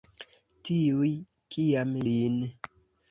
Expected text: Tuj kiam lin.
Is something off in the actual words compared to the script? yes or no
no